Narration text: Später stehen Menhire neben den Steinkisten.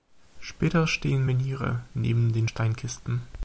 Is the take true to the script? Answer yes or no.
yes